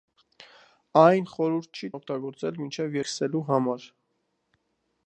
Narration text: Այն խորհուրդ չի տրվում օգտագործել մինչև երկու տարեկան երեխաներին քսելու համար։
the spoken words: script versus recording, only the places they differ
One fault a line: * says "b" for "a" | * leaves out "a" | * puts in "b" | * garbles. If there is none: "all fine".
* leaves out "տրվում"
* leaves out "երկու տարեկան երեխաներին"